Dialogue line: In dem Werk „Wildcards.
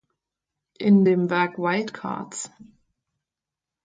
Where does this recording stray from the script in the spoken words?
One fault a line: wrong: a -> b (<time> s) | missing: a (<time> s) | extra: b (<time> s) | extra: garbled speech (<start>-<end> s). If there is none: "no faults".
no faults